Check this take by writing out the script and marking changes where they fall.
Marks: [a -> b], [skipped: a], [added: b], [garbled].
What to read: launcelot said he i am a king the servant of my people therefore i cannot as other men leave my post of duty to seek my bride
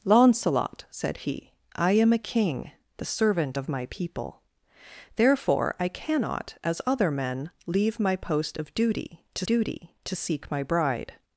launcelot said he i am a king the servant of my people therefore i cannot as other men leave my post of duty to [added: duty to] seek my bride